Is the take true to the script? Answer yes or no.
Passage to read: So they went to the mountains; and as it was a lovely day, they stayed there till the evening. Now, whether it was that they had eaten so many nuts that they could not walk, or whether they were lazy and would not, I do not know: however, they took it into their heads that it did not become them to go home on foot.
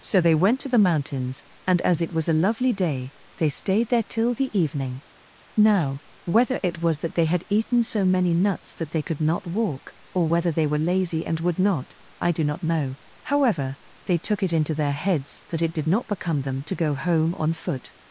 yes